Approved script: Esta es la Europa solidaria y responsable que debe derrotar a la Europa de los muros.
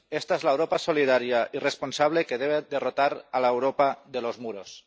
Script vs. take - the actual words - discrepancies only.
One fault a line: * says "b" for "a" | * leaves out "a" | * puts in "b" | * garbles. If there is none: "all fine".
all fine